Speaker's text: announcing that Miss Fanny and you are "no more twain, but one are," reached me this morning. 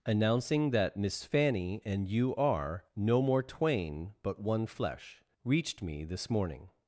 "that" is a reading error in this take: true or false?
false